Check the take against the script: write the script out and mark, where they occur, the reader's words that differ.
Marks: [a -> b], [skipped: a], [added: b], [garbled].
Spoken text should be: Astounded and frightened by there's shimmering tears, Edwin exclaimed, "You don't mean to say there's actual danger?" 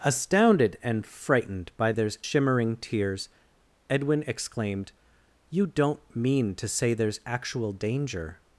Astounded and frightened by there's shimmering tears, Edwin exclaimed, "You don't mean to say there's actual danger?"